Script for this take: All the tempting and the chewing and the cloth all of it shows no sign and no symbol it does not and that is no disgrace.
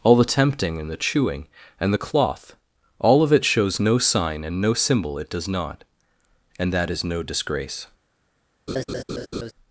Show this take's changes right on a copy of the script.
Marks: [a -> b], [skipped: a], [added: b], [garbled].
All the tempting and the chewing and the cloth all of it shows no sign and no symbol it does not and that is no disgrace.